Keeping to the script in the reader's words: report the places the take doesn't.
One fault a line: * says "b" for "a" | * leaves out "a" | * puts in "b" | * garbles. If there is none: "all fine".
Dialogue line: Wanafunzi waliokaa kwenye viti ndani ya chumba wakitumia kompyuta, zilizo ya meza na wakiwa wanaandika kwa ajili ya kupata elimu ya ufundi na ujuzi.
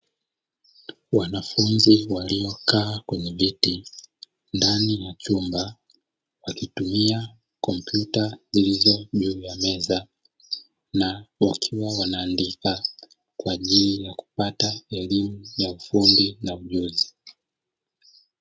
* puts in "juu"